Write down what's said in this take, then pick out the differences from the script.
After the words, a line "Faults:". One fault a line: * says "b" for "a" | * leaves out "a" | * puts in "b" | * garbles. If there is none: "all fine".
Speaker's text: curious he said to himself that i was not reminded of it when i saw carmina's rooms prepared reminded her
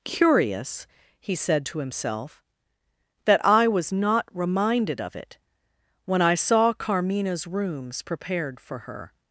curious he said to himself that i was not reminded of it when i saw carmina's rooms prepared for her
Faults:
* says "for" for "reminded"